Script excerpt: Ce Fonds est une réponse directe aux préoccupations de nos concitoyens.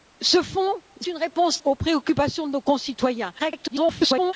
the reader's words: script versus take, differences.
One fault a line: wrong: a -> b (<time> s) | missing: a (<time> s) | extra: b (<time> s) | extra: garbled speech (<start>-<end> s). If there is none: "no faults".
missing: est (0.7 s)
missing: directe (1.6 s)
extra: garbled speech (3.4-4.3 s)